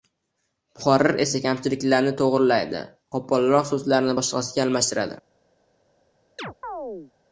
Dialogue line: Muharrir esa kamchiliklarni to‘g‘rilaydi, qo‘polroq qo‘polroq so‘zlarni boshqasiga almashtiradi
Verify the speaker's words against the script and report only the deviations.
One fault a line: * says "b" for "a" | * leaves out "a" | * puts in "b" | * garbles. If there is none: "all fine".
* leaves out "qo‘polroq"